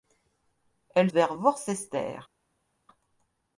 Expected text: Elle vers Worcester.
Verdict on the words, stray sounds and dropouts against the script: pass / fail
pass